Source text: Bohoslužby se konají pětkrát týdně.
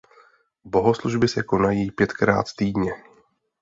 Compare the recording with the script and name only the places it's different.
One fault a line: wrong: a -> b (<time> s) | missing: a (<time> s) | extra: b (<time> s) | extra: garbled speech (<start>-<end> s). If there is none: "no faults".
no faults